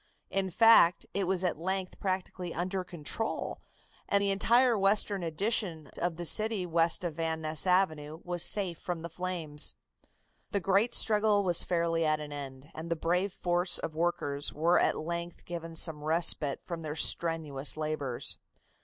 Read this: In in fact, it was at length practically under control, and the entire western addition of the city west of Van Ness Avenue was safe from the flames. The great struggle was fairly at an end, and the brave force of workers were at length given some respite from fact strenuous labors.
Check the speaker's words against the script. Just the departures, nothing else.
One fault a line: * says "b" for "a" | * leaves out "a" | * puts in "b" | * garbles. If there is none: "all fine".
* leaves out "in"
* says "their" for "fact"